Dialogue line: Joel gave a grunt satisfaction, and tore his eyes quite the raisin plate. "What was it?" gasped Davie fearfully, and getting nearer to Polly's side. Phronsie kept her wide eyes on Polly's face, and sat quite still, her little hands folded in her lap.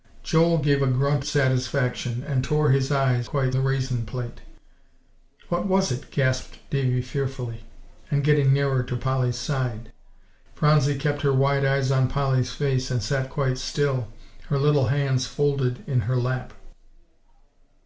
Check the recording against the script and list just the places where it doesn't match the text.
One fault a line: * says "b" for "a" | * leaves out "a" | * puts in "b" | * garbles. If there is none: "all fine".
all fine